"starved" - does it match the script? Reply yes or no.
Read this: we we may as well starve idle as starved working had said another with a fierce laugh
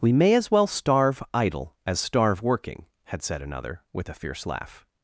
no